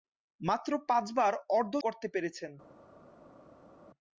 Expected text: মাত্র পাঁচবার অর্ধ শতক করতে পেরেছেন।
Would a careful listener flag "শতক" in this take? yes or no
yes